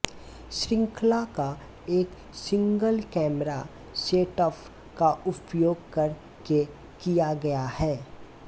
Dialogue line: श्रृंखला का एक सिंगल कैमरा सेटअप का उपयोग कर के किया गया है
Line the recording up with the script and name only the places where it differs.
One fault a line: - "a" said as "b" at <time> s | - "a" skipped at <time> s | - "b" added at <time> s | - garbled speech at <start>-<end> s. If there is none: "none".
none